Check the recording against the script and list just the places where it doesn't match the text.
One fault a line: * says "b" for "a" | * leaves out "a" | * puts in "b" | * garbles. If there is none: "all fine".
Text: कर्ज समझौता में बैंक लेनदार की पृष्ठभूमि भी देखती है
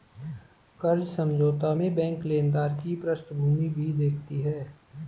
all fine